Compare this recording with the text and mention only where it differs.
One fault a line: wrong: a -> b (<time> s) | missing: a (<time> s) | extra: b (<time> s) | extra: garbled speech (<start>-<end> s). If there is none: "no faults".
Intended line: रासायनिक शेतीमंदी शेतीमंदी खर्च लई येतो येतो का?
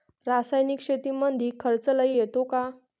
missing: शेतीमंदी (1.5 s)
missing: येतो (2.4 s)